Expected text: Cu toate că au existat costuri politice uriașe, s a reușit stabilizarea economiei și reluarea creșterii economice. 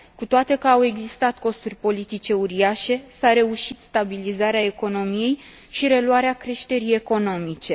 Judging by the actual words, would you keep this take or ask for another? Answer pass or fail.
pass